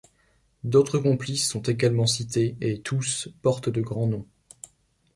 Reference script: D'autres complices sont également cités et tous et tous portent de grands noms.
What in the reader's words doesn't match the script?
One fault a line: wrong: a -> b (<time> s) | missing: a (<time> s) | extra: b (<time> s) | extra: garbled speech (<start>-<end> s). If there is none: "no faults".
missing: et tous (3.3 s)